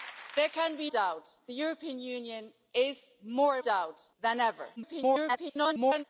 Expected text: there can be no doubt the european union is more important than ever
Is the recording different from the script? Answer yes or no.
yes